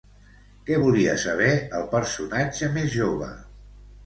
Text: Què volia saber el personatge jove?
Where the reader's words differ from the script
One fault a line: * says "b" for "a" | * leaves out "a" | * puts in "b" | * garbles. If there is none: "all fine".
* puts in "més"